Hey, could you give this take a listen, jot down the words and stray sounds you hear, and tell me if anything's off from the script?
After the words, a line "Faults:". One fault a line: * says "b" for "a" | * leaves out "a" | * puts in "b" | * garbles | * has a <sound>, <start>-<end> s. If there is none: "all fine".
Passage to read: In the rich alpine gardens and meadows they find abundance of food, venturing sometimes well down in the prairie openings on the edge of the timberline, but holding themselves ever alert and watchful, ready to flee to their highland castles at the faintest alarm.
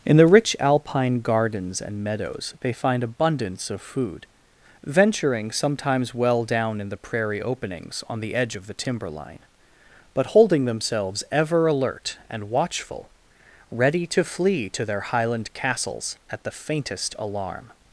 In the rich alpine gardens and meadows they find abundance of food, venturing sometimes well down in the prairie openings on the edge of the timberline, but holding themselves ever alert and watchful, ready to flee to their highland castles at the faintest alarm.
Faults:
all fine